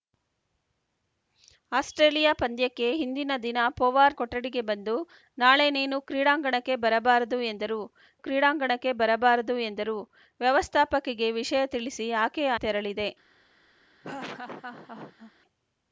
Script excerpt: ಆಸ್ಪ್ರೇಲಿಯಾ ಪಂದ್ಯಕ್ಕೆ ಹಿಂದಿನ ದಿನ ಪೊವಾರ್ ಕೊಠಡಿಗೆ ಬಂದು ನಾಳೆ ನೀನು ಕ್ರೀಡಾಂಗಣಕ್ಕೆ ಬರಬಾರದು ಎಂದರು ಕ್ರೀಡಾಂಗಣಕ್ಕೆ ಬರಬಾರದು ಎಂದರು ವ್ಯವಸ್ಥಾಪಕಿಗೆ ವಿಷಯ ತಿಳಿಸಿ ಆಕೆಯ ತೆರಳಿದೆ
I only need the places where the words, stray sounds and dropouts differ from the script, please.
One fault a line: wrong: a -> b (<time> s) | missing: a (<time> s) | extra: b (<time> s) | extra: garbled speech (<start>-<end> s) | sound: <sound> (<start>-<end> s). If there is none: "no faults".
sound: laugh (14.0-15.3 s)